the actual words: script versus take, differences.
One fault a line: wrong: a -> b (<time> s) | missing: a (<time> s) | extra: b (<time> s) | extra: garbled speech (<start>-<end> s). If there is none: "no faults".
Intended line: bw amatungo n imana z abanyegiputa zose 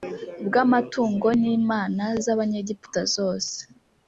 no faults